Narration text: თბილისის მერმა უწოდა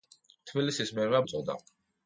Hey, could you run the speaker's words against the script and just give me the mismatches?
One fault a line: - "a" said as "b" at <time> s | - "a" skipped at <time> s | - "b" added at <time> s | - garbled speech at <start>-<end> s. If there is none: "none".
none